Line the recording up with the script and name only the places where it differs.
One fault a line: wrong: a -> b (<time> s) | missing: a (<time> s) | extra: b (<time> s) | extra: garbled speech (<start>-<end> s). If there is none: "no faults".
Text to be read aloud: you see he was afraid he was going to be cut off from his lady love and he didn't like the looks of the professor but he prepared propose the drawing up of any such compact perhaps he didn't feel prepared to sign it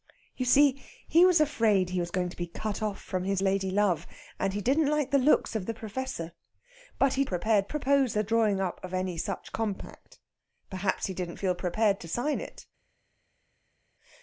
no faults